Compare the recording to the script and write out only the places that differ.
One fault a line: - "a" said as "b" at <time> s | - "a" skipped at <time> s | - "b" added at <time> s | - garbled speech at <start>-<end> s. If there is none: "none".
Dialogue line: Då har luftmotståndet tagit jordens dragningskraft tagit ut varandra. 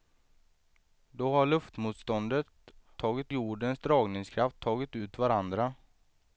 none